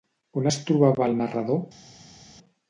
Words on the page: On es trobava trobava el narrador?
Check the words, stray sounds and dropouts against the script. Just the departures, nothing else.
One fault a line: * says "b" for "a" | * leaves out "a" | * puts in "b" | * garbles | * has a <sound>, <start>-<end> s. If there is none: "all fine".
* leaves out "trobava"